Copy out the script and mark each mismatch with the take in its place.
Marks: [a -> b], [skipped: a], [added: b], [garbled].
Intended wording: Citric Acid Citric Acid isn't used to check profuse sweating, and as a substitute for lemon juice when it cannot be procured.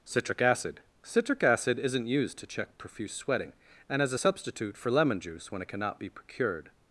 Citric Acid Citric Acid isn't used to check profuse sweating, and as a substitute for lemon juice when it cannot be procured.